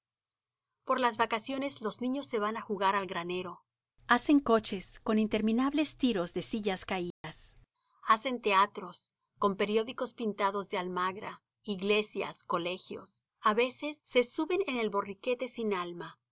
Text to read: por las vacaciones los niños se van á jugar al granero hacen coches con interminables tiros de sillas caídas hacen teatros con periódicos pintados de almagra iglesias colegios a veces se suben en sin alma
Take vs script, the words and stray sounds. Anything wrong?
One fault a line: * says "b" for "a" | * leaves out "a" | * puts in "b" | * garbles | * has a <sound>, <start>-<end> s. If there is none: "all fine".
* has a dropout, 7.1-7.2 s
* puts in "el borriquete"